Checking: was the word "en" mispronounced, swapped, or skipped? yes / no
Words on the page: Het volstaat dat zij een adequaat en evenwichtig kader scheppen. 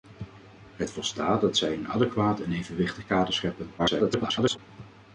no